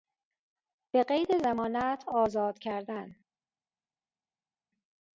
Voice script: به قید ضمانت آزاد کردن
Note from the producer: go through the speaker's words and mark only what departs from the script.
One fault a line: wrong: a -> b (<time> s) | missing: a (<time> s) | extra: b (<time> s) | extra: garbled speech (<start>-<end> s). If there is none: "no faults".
no faults